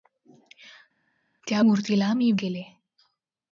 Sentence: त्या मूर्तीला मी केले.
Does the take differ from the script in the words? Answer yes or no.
no